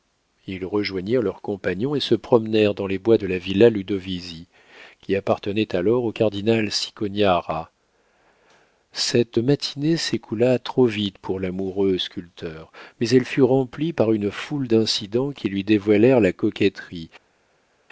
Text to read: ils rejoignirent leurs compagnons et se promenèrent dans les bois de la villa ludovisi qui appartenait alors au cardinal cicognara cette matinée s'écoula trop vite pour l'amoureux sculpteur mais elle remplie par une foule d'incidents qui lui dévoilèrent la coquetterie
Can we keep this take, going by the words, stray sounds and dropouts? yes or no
no